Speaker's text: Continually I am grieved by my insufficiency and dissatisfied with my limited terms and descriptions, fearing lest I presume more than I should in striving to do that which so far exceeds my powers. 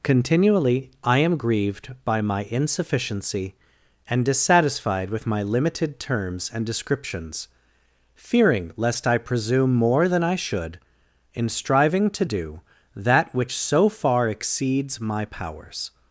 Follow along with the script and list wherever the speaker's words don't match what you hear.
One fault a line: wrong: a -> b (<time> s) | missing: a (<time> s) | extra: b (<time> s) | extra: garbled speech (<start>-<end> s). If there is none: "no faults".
no faults